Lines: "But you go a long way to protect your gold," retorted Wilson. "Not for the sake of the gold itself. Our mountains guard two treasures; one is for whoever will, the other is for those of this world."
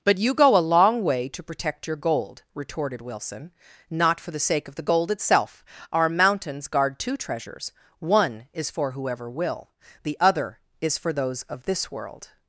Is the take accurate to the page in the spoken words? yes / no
yes